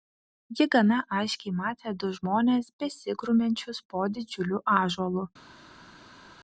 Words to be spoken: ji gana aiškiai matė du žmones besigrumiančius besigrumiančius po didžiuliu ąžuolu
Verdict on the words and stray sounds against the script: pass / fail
fail